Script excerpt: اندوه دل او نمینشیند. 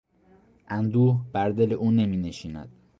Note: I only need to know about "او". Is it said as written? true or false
true